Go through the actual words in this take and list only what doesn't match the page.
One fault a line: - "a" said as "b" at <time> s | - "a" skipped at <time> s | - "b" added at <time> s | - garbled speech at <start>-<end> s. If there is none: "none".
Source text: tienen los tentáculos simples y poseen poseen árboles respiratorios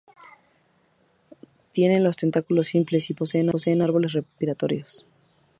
none